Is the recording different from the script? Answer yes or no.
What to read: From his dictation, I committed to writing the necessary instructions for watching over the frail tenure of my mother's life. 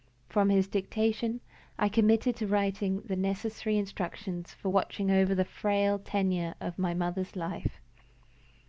no